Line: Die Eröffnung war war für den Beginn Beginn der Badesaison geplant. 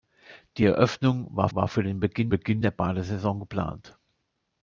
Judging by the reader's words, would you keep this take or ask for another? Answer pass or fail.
pass